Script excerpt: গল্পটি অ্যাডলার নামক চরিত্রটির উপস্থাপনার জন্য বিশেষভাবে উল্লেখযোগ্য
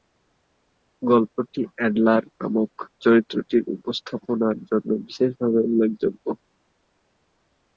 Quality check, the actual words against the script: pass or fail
pass